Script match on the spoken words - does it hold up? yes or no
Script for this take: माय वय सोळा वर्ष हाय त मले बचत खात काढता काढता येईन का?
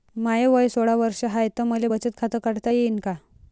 no